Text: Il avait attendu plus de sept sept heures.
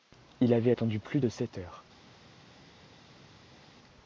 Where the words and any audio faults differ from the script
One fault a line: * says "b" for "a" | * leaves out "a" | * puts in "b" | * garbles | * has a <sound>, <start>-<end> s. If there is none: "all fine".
* leaves out "sept"